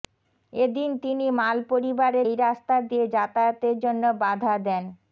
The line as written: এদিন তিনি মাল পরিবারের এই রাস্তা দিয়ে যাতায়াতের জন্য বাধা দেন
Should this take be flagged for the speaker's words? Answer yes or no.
no